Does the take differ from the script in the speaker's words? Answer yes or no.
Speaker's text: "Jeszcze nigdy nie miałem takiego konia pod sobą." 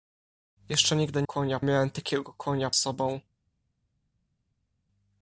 yes